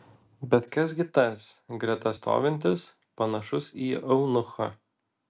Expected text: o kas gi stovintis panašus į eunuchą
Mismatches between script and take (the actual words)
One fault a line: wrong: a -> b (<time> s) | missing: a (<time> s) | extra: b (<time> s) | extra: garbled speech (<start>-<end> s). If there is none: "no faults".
wrong: o -> bet (0.5 s)
extra: tas greta (1.2 s)